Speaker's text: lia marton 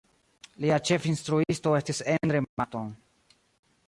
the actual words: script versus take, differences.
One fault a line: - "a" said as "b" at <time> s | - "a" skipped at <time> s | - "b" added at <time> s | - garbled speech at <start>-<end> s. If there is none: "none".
- "ĉefinstruisto estis endre" added at 0.9 s